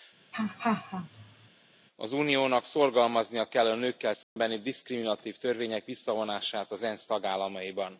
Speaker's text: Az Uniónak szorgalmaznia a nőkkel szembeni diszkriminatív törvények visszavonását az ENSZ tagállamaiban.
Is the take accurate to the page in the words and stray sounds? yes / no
no